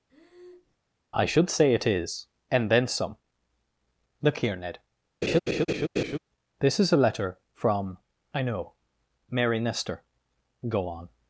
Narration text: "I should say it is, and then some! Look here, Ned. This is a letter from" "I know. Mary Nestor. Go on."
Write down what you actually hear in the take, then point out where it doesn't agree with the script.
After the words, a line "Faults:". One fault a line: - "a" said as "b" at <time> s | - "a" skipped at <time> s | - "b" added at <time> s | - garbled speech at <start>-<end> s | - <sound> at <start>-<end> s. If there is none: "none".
"I should say it is, and then some! Look here, Ned. This is a letter from" "I know. Mary Nestor. Go on."
Faults:
- breath at 0.1-0.8 s
- laugh at 5.2-6.2 s